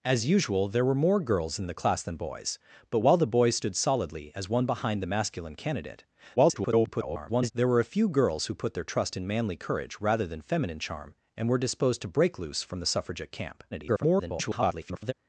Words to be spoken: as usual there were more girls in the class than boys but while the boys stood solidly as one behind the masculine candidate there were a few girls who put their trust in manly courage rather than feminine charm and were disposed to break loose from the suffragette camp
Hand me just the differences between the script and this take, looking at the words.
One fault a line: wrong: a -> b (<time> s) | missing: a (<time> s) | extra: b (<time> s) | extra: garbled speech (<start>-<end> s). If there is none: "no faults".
extra: garbled speech (6.4-7.5 s)
extra: garbled speech (13.7-15.1 s)